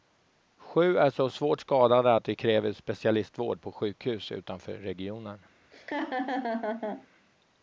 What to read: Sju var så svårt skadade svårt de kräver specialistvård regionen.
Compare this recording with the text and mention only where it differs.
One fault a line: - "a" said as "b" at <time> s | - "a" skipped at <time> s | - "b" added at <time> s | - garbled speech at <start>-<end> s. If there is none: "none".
- "var" said as "är" at 1.0 s
- "svårt" said as "att" at 2.1 s
- "på sjukhus utanför" added at 3.6 s